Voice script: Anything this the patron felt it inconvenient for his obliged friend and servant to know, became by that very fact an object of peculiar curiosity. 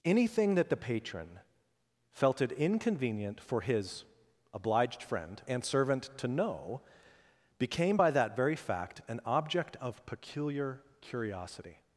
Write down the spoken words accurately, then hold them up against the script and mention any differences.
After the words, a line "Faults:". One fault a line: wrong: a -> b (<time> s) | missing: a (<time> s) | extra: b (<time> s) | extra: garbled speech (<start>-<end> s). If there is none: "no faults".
Anything that the patron felt it inconvenient for his obliged friend and servant to know, became by that very fact an object of peculiar curiosity.
Faults:
wrong: this -> that (0.6 s)